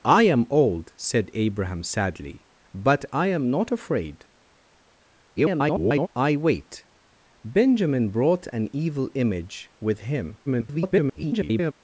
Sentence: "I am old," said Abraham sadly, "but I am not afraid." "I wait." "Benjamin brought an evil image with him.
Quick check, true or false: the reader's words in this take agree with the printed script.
false